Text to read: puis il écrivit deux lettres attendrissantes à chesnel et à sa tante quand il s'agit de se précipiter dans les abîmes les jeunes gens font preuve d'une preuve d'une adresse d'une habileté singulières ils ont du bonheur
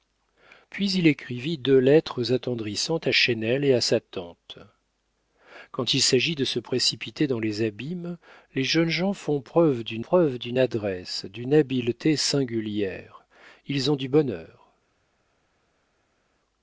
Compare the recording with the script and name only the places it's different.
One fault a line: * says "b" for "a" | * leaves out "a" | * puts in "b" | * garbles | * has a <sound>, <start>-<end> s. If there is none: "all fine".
all fine